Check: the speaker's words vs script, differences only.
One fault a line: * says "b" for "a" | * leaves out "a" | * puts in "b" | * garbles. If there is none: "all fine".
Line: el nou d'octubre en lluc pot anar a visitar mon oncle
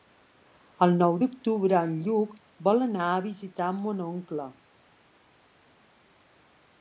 * says "vol" for "pot"